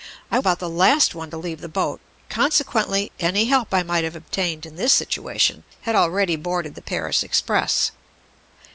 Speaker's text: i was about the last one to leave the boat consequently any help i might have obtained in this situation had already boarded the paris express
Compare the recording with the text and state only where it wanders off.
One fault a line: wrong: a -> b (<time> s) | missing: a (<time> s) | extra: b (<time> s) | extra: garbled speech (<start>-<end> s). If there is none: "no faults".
missing: was (0.4 s)